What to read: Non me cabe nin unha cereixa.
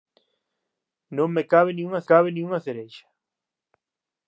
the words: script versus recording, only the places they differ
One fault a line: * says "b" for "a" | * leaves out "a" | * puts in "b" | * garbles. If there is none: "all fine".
* puts in "cabe nin unha"